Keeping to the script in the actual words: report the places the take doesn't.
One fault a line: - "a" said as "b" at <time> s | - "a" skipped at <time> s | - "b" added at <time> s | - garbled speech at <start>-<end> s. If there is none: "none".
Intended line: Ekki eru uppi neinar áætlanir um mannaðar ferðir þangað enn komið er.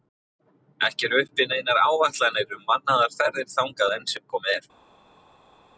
- "sem" added at 4.1 s